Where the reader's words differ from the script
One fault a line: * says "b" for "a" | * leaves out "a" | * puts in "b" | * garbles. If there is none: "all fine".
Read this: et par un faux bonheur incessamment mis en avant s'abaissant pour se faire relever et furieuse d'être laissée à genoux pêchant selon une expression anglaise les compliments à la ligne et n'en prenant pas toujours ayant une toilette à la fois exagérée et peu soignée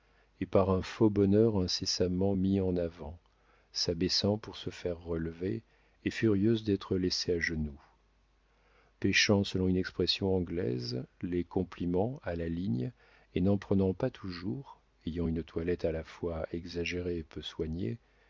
all fine